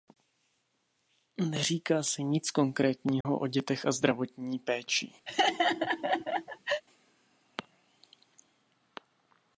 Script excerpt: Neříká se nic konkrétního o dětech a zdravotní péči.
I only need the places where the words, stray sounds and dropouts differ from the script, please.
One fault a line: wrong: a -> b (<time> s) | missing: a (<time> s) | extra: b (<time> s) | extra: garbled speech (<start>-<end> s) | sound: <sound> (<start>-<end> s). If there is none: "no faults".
sound: dropout (3.2-3.3 s)
sound: laugh (5.3-6.8 s)